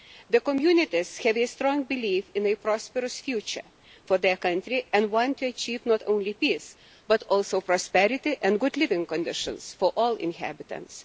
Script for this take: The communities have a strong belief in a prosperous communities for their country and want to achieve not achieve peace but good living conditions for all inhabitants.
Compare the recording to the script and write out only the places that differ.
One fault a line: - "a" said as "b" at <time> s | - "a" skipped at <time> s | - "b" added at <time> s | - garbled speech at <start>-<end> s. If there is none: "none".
- "communities" said as "future" at 3.2 s
- "achieve" said as "only" at 6.1 s
- "also prosperity and" added at 7.2 s